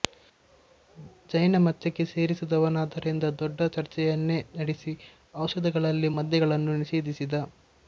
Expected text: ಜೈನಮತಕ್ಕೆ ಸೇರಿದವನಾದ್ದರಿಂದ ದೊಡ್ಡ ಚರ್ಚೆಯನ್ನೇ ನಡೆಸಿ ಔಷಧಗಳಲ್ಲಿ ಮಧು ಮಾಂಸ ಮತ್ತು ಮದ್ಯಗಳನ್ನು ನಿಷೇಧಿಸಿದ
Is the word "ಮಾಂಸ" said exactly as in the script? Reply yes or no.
no